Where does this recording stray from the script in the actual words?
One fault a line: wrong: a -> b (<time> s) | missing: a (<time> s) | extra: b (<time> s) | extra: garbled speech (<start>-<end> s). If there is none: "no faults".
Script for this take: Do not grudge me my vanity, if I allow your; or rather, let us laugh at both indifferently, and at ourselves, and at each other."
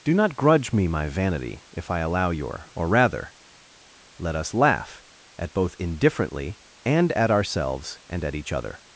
no faults